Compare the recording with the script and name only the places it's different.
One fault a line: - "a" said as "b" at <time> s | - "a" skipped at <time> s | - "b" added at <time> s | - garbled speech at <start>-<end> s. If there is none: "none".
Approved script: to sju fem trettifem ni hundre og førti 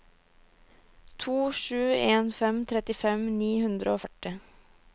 - "en" added at 2.1 s